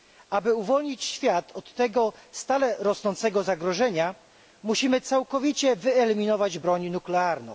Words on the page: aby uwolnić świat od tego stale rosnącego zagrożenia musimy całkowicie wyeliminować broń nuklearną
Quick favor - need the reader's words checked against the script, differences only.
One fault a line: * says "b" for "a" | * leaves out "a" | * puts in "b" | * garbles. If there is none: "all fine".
all fine